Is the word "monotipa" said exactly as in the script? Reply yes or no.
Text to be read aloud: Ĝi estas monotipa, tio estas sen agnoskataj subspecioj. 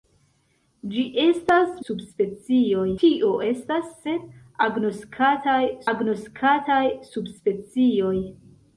no